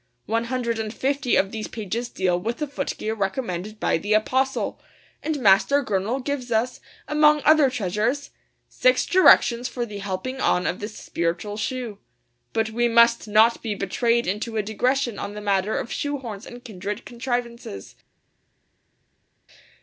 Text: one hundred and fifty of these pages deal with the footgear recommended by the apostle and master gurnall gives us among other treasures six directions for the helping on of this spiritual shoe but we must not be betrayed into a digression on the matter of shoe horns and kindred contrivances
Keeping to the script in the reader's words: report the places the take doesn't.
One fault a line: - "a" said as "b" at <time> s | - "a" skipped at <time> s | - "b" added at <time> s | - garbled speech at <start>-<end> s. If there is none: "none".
none